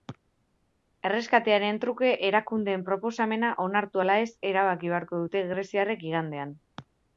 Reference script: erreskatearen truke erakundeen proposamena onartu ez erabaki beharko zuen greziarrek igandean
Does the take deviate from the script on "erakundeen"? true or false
false